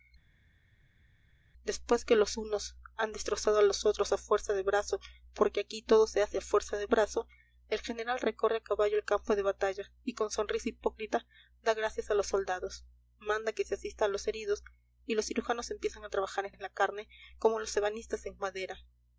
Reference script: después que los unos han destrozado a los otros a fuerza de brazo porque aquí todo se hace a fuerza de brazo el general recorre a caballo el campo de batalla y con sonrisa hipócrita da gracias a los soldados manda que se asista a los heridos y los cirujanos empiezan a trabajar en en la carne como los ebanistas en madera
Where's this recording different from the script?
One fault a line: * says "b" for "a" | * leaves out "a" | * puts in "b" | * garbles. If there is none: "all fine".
all fine